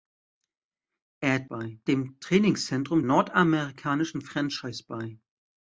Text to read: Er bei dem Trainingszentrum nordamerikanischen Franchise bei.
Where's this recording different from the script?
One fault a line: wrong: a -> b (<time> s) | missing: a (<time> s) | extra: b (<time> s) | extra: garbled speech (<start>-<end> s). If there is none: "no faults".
no faults